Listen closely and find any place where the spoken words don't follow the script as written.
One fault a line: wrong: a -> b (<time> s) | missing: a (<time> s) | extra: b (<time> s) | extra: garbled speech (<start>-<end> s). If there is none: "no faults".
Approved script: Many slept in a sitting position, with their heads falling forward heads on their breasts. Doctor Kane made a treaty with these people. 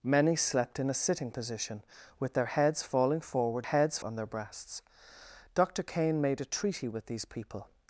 no faults